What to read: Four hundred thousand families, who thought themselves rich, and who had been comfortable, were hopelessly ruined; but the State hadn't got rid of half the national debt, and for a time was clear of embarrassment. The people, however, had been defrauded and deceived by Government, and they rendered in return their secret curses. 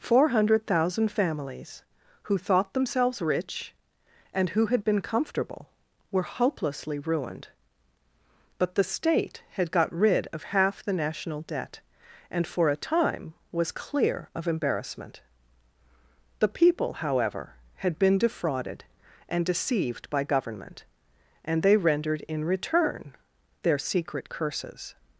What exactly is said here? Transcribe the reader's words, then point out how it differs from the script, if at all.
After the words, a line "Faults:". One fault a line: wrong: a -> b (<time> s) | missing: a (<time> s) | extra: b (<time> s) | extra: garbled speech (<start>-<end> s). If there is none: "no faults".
Four hundred thousand families, who thought themselves rich, and who had been comfortable, were hopelessly ruined; but the State had got rid of half the national debt, and for a time was clear of embarrassment. The people, however, had been defrauded and deceived by Government, and they rendered in return their secret curses.
Faults:
wrong: hadn't -> had (9.5 s)